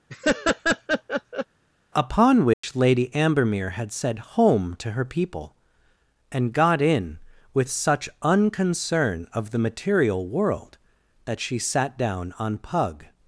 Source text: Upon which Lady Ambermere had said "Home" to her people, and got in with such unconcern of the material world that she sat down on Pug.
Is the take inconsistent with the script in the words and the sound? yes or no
yes